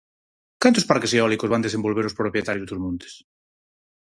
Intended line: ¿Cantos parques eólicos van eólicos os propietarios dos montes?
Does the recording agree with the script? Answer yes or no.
no